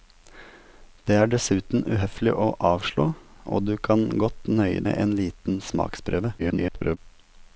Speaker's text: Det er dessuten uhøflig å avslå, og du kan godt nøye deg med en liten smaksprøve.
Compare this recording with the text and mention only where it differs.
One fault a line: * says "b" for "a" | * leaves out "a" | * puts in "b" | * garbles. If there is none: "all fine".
* leaves out "deg"
* garbles